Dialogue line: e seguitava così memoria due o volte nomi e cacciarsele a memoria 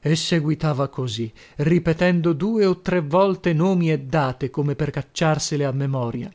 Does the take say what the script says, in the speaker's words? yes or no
no